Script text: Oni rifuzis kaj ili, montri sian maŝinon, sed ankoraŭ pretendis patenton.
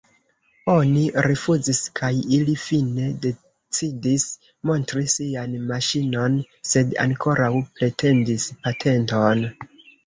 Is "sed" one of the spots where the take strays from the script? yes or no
no